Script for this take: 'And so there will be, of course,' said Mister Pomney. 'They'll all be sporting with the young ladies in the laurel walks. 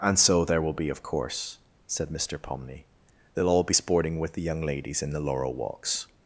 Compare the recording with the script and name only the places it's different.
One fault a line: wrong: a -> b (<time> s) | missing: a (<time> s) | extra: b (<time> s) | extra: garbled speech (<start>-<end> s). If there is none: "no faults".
no faults